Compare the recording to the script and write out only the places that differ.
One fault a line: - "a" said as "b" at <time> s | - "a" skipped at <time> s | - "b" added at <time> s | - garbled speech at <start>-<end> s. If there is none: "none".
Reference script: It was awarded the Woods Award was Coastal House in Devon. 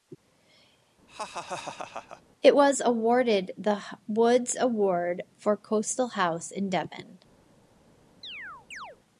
- "was" said as "for" at 5.4 s